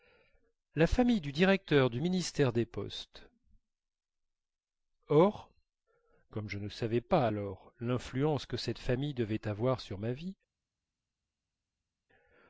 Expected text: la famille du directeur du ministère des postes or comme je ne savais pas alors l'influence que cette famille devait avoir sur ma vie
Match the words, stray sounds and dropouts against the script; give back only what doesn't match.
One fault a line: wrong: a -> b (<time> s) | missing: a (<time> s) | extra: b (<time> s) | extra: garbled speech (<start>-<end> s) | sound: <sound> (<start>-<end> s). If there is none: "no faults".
no faults